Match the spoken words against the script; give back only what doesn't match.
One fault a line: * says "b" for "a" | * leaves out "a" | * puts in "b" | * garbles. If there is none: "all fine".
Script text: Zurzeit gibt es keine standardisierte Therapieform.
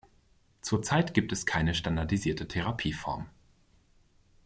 all fine